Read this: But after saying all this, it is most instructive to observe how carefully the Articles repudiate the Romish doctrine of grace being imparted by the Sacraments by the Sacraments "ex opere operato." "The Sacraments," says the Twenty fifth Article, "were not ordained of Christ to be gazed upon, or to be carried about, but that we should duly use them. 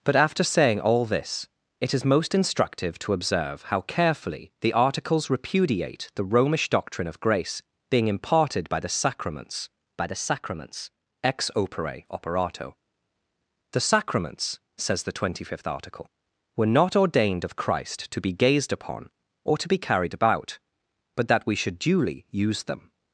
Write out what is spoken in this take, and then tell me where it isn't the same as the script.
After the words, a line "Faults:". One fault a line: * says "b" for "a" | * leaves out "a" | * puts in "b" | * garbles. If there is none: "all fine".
But after saying all this, it is most instructive to observe how carefully the Articles repudiate the Romish doctrine of grace being imparted by the Sacraments by the Sacraments "ex opere operato." "The Sacraments," says the Twenty fifth Article, "were not ordained of Christ to be gazed upon, or to be carried about, but that we should duly use them.
Faults:
all fine